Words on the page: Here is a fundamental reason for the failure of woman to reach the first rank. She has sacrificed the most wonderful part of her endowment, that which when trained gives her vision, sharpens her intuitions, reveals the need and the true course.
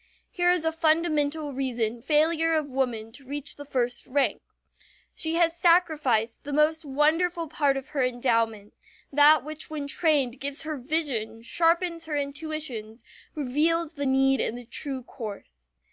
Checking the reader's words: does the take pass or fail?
fail